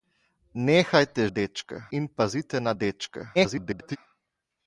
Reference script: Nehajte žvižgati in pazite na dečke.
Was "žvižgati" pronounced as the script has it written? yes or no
no